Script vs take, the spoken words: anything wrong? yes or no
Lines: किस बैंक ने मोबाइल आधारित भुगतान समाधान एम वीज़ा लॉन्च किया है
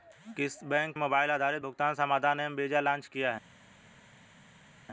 yes